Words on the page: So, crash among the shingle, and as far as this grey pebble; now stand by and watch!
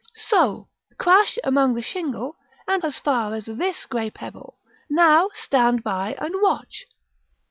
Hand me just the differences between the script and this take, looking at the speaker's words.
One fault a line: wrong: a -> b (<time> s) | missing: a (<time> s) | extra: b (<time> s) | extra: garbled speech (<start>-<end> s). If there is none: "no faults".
no faults